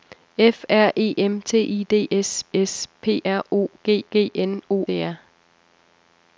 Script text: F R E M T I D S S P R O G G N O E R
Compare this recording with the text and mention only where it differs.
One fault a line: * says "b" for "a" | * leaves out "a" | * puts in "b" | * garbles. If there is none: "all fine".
all fine